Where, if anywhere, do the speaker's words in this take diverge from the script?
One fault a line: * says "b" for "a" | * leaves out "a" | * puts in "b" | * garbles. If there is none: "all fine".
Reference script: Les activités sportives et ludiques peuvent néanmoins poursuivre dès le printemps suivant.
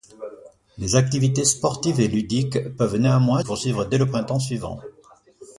all fine